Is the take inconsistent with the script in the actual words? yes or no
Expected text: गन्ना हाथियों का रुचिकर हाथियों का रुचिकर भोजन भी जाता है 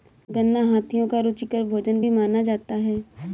yes